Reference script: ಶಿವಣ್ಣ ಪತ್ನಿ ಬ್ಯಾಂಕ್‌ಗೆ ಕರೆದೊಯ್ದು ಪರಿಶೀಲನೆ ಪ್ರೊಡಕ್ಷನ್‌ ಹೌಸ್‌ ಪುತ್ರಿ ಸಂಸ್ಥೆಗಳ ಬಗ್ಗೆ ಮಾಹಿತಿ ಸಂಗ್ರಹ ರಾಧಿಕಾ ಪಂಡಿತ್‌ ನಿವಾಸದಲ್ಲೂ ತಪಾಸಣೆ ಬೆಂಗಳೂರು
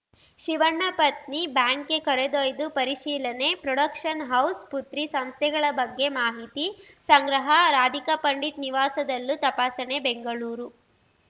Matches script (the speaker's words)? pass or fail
pass